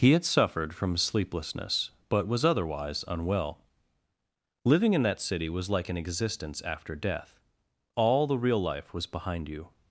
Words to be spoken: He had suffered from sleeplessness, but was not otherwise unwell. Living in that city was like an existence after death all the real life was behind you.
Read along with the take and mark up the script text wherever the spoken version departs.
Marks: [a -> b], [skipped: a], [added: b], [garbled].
He had suffered from sleeplessness, but was [skipped: not] otherwise unwell. Living in that city was like an existence after death all the real life was behind you.